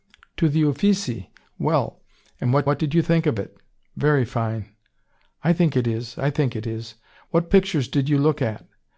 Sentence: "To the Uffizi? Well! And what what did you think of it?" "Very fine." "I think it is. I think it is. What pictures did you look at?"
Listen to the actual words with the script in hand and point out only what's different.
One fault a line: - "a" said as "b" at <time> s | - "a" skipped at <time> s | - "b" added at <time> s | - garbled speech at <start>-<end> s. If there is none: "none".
none